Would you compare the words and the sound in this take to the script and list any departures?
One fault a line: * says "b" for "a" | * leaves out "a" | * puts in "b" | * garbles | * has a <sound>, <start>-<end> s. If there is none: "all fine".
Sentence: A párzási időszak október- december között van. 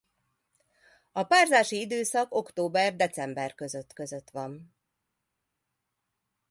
* puts in "között"